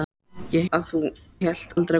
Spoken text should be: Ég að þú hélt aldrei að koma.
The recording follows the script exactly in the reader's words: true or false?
true